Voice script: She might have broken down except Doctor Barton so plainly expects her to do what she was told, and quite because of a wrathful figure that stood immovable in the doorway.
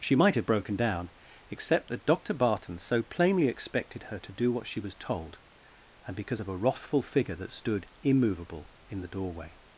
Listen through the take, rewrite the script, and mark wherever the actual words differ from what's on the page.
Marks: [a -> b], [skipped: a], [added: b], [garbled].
She might have broken down except [added: that] Doctor Barton so plainly [expects -> expected] her to do what she was told, and [skipped: quite] because of a wrathful figure that stood immovable in the doorway.